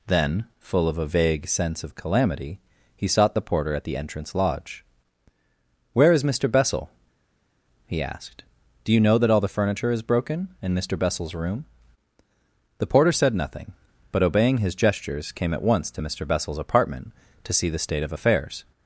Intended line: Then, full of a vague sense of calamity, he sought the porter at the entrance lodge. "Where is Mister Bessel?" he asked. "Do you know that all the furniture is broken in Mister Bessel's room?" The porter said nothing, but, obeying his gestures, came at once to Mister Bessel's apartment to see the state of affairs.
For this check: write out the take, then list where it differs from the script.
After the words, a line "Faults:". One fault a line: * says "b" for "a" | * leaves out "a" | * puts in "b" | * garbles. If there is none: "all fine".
Then, full of a vague sense of calamity, he sought the porter at the entrance lodge. "Where is Mister Bessel?" he asked. "Do you know that all the furniture is broken in Mister Bessel's room?" The porter said nothing, but, obeying his gestures, came at once to Mister Bessel's apartment to see the state of affairs.
Faults:
all fine